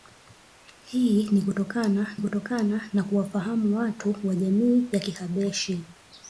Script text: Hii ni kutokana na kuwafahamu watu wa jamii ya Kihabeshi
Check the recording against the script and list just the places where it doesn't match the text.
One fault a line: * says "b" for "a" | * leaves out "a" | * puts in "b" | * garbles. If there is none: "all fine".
* puts in "kutokana"